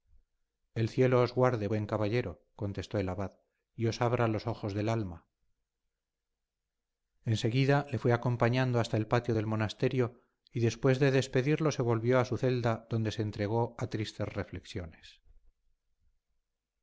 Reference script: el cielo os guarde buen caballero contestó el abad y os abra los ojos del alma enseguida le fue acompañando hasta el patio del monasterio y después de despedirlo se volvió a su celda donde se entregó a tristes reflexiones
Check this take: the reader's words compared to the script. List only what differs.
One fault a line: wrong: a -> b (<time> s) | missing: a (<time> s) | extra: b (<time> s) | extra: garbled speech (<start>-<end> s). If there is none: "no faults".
no faults